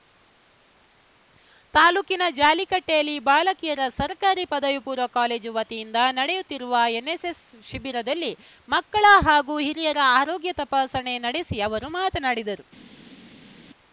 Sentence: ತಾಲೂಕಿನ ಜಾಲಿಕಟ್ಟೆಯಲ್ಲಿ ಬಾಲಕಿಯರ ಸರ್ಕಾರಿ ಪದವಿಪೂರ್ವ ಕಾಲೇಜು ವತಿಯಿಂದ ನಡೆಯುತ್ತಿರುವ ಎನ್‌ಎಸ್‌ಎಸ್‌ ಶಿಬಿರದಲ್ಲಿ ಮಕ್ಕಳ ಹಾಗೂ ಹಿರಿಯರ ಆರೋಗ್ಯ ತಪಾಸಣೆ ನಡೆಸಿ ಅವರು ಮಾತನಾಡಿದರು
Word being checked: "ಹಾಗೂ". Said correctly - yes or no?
yes